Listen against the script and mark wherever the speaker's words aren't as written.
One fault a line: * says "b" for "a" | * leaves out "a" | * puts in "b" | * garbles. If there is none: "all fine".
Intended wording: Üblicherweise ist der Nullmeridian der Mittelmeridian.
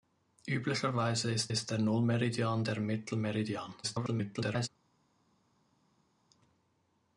* puts in "ist"
* garbles